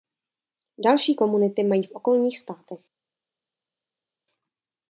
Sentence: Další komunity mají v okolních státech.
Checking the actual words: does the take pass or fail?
pass